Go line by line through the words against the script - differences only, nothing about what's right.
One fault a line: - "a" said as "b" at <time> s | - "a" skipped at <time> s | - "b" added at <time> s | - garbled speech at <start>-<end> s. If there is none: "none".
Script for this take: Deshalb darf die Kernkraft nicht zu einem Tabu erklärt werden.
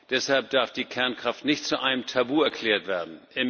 none